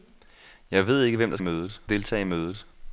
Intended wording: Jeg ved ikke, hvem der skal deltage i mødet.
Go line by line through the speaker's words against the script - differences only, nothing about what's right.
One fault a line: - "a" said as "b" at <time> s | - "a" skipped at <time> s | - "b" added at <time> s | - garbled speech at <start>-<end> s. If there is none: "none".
- "skal" said as "mødet" at 1.4 s